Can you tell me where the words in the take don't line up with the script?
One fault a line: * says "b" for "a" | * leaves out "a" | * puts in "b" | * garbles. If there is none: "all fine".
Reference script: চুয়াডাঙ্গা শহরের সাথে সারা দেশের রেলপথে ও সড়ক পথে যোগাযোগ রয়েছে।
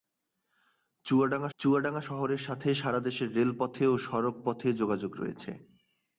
* puts in "চুয়াডাঙ্গা"